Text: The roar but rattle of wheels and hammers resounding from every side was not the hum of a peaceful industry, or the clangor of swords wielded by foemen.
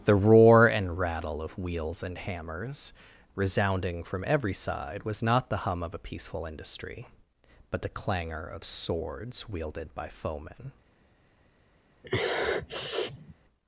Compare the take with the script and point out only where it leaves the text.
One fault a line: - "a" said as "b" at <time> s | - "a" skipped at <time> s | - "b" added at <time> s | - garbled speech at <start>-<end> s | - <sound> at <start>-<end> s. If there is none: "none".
- "but" said as "and" at 0.7 s
- "or" said as "but" at 7.7 s
- sniff at 12.0-13.3 s